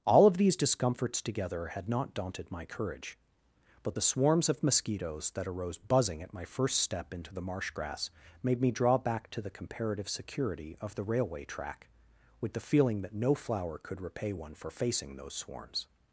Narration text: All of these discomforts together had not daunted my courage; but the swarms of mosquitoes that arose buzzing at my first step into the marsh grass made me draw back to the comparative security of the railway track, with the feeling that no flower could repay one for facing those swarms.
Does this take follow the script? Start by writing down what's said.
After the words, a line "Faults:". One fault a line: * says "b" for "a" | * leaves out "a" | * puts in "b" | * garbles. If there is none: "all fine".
All of these discomforts together had not daunted my courage; but the swarms of mosquitoes that arose buzzing at my first step into the marsh grass made me draw back to the comparative security of the railway track, with the feeling that no flower could repay one for facing those swarms.
Faults:
all fine